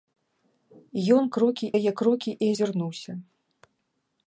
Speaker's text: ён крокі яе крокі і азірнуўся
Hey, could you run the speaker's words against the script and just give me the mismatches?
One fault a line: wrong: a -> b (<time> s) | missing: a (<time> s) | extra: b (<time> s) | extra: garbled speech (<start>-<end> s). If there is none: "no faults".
no faults